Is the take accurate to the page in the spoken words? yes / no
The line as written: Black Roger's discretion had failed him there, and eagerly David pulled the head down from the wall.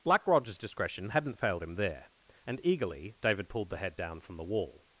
no